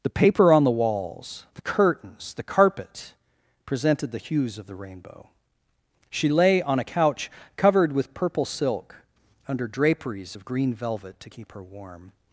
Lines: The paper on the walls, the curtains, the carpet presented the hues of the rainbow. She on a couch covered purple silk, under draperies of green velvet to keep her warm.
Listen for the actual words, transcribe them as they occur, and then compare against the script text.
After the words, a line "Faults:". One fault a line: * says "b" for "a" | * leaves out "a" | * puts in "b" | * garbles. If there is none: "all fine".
The paper on the walls, the curtains, the carpet presented the hues of the rainbow. She lay on a couch covered with purple silk, under draperies of green velvet to keep her warm.
Faults:
* puts in "lay"
* puts in "with"